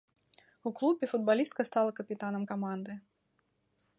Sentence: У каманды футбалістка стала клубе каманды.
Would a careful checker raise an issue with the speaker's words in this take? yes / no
yes